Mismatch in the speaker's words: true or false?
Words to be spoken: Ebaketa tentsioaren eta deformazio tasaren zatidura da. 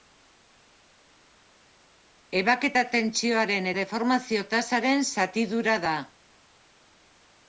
true